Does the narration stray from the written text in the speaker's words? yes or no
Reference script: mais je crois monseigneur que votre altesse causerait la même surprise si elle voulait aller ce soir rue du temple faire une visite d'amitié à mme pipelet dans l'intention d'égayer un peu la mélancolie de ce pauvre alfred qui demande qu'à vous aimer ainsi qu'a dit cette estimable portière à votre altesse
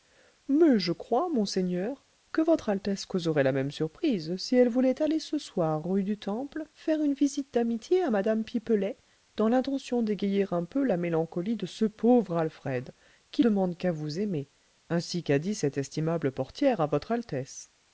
no